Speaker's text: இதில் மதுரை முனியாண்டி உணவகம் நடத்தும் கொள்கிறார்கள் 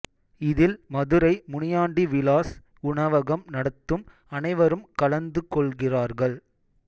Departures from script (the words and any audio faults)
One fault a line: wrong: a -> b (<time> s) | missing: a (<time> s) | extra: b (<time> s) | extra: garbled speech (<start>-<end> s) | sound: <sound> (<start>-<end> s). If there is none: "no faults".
extra: விலாஸ் (2.1 s)
extra: அனைவரும் கலந்து (4.3 s)